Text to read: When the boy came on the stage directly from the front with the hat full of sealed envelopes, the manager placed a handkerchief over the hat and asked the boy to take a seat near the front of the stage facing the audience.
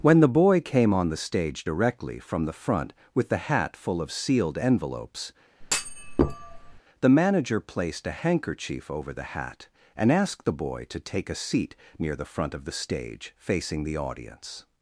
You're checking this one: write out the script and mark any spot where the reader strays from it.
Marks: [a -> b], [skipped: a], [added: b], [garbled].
When the boy came on the stage directly from the front with the hat full of sealed envelopes, the manager placed a handkerchief over the hat and asked the boy to take a seat near the front of the stage facing the audience.